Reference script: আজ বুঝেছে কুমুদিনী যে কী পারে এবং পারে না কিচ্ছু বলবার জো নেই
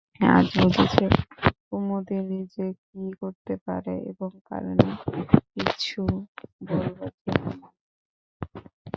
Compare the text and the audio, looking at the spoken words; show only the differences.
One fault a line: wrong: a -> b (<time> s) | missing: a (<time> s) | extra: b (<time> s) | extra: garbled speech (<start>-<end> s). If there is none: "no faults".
extra: করতে (3.2 s)